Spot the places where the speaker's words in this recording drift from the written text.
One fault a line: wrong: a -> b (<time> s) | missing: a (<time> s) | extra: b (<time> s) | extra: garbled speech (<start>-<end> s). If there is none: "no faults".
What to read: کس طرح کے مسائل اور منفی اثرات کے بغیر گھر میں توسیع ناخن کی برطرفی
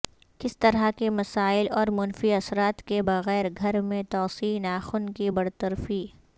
no faults